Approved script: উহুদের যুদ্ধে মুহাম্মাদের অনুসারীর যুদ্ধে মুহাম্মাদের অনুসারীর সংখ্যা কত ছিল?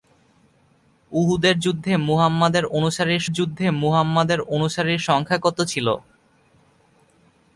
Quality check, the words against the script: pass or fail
pass